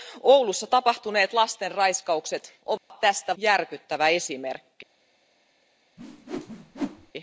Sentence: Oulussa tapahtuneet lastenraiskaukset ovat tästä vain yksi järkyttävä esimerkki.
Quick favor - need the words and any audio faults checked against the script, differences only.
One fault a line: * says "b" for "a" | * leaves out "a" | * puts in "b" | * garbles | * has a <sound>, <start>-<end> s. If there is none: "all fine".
* has a dropout, 2.8-2.9 s
* leaves out "vain yksi"
* has a whoosh, 6.0-7.1 s